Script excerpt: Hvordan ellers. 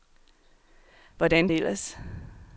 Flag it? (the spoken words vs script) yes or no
no